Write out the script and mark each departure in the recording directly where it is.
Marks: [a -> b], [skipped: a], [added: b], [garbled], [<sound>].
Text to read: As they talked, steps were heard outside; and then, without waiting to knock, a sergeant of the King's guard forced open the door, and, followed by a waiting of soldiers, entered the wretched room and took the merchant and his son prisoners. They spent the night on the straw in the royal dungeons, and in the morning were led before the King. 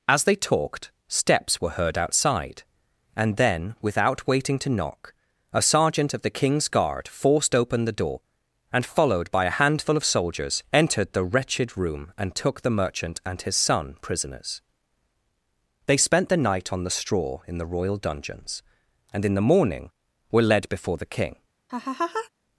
As they talked, steps were heard outside; and then, without waiting to knock, a sergeant of the King's guard forced open the door, and, followed by a [waiting -> handful] of soldiers, entered the wretched room and took the merchant and his son prisoners. They spent the night on the straw in the royal dungeons, and in the morning were led before the King. [laugh]